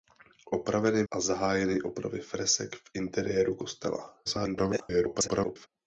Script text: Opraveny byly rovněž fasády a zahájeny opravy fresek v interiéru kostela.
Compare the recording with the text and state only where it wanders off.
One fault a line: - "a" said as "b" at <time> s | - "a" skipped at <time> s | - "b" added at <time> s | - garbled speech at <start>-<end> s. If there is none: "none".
- "byly rovněž fasády" skipped at 1.0 s
- garbled speech at 4.3-5.7 s